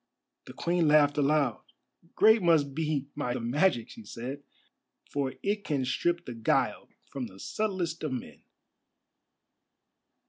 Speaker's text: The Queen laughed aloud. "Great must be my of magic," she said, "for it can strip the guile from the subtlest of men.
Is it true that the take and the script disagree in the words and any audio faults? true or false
false